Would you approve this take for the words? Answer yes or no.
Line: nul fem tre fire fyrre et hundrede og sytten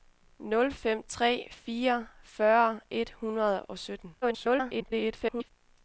no